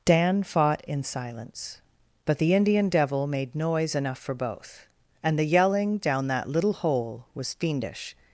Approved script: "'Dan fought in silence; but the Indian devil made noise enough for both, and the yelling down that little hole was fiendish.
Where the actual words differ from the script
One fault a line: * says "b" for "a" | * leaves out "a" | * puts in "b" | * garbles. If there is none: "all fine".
all fine